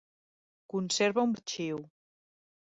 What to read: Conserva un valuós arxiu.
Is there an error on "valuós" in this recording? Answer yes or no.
yes